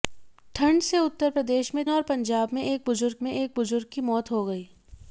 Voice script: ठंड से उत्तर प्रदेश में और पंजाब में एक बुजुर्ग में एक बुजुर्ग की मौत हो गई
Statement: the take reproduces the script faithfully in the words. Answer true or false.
true